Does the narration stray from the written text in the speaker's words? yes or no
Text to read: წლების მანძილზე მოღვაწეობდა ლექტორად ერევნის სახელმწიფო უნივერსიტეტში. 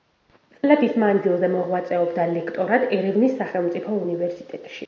no